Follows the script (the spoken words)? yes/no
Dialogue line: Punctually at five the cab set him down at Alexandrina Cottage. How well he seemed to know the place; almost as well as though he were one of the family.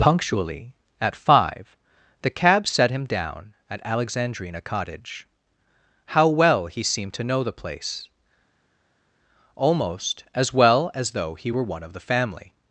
yes